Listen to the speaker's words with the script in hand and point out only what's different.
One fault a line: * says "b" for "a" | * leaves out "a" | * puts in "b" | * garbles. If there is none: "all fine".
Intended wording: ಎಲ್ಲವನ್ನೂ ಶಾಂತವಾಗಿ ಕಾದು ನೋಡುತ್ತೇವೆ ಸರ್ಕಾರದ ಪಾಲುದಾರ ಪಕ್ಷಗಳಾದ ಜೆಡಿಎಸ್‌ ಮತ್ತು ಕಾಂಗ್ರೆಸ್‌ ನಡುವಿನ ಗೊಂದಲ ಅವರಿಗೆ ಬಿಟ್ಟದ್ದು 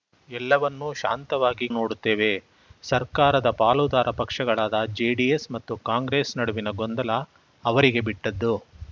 * leaves out "ಕಾದು"